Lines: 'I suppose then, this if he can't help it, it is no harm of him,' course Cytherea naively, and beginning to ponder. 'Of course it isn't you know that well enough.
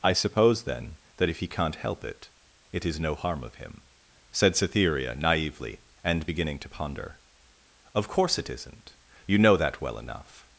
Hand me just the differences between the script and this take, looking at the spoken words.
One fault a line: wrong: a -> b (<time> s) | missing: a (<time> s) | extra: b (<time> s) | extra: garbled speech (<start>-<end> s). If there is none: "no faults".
wrong: this -> that (1.2 s)
wrong: course -> said (4.3 s)